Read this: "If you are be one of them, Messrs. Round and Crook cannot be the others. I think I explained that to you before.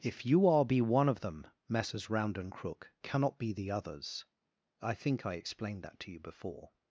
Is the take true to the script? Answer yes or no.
yes